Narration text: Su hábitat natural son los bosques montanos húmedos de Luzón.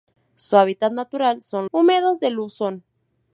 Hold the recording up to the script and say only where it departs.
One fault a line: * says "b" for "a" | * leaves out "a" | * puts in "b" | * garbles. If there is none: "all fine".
* leaves out "los bosques montanos"